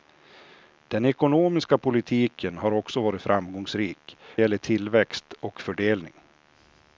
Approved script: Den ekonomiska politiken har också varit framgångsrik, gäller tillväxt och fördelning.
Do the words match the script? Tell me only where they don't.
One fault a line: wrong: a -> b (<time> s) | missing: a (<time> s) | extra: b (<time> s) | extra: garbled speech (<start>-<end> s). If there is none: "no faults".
no faults